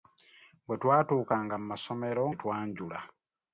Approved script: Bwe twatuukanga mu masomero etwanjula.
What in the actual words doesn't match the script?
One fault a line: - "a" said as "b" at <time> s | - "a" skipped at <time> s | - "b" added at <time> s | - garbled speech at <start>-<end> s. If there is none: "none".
none